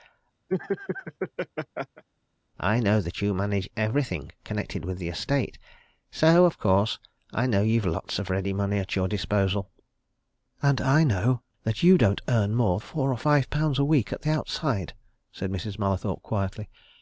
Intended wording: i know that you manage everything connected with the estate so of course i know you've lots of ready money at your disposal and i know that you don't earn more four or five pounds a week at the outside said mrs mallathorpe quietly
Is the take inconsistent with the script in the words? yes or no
no